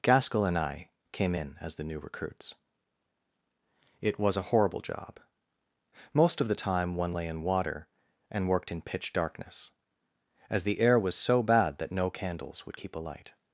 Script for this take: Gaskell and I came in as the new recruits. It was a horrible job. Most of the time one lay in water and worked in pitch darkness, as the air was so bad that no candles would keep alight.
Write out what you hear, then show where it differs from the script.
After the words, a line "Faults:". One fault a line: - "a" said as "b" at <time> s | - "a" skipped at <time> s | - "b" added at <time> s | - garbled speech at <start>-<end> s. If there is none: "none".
Gaskell and I came in as the new recruits. It was a horrible job. Most of the time one lay in water and worked in pitch darkness, as the air was so bad that no candles would keep alight.
Faults:
none